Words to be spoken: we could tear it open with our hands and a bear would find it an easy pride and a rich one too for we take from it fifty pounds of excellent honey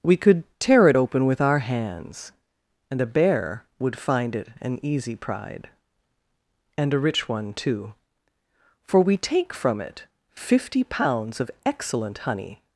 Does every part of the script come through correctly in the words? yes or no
yes